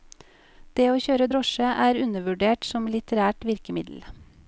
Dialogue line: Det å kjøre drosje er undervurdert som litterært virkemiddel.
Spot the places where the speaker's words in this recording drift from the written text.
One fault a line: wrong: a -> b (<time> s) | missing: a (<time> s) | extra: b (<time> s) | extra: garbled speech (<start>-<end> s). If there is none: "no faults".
no faults